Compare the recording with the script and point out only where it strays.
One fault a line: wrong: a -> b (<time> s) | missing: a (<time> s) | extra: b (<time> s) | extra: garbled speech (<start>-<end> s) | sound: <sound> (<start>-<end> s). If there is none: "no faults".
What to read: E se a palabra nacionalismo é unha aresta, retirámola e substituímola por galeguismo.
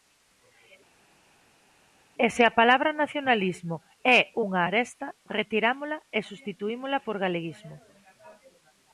no faults